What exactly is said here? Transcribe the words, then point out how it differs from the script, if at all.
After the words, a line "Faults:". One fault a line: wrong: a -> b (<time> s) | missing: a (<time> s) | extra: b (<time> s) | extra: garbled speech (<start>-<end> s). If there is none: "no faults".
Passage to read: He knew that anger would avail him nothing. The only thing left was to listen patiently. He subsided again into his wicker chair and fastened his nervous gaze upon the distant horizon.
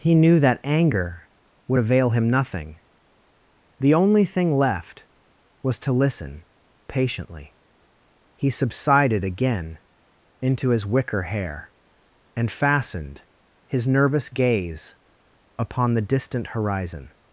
He knew that anger would avail him nothing. The only thing left was to listen patiently. He subsided again into his wicker hair and fastened his nervous gaze upon the distant horizon.
Faults:
wrong: chair -> hair (11.2 s)